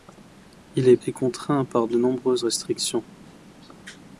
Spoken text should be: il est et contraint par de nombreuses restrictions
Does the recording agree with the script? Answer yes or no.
yes